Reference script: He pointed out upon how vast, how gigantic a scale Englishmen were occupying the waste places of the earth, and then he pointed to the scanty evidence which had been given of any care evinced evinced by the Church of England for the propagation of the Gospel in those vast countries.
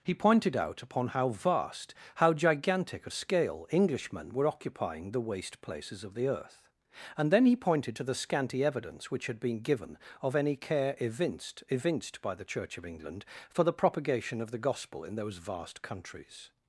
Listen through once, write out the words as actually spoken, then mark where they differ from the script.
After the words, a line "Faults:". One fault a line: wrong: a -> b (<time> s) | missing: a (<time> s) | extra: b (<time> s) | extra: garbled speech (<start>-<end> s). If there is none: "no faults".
He pointed out upon how vast, how gigantic a scale Englishmen were occupying the waste places of the earth, and then he pointed to the scanty evidence which had been given of any care evinced evinced by the Church of England for the propagation of the Gospel in those vast countries.
Faults:
no faults